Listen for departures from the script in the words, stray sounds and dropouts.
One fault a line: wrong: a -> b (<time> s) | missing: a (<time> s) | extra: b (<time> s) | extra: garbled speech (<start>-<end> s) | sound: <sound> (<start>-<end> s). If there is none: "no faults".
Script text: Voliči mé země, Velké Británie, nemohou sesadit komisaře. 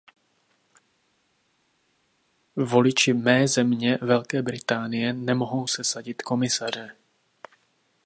no faults